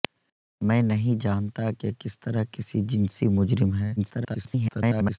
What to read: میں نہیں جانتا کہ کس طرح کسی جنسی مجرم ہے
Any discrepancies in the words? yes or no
yes